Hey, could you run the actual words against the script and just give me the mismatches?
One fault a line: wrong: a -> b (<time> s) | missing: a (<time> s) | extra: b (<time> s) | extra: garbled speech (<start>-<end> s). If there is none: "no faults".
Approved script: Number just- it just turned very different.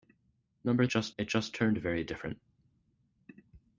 no faults